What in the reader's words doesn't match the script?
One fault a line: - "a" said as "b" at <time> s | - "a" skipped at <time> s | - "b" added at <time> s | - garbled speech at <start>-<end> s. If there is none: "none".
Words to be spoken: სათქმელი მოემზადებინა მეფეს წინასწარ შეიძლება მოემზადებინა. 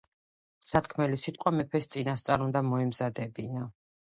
- "მოემზადებინა" said as "სიტყვა" at 1.2 s
- "შეიძლება" said as "უნდა" at 2.5 s